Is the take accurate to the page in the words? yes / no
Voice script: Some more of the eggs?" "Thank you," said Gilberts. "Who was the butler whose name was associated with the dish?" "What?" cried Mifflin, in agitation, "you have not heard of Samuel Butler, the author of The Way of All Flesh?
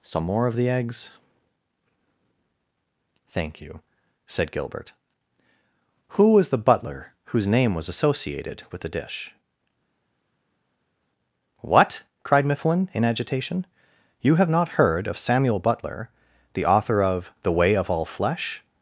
no